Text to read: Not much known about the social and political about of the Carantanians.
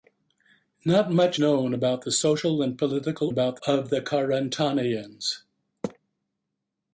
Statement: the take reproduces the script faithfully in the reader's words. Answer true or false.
true